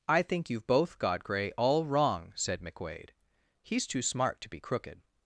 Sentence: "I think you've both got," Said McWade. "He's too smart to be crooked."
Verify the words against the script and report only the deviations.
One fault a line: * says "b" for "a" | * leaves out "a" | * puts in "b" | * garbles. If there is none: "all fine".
* puts in "Gray all wrong"